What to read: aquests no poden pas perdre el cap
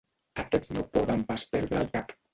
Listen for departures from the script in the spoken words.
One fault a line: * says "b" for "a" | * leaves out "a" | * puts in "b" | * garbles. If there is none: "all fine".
all fine